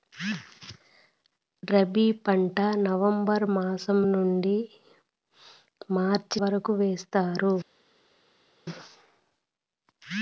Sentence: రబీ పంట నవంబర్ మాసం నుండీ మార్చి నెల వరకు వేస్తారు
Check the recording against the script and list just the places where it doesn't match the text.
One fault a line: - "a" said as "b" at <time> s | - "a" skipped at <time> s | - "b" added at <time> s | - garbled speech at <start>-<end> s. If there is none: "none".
- "నెల" skipped at 6.4 s